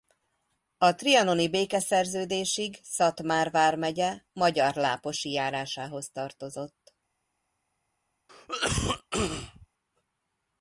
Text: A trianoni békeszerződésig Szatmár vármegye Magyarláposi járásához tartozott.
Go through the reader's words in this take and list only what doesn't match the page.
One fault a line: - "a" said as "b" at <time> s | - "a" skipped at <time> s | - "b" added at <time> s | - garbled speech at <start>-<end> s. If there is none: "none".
none